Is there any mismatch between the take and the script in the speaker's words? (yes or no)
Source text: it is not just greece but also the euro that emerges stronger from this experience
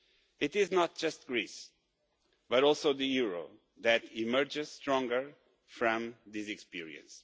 no